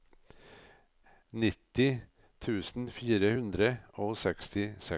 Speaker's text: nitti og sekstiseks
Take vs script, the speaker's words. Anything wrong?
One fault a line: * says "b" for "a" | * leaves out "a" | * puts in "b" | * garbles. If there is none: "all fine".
* puts in "tusen fire hundre"